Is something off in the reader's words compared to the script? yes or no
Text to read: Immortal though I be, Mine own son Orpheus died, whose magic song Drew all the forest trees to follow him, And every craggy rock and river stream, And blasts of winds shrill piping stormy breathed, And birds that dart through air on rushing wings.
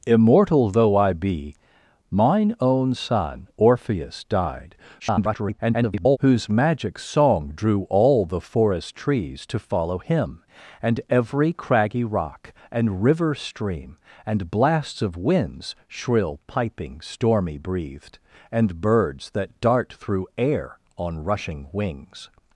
yes